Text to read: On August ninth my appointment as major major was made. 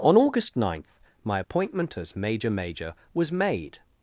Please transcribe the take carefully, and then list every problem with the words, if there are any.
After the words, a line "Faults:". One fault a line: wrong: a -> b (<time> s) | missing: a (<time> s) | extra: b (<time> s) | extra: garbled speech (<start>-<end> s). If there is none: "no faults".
On August ninth my appointment as major major was made.
Faults:
no faults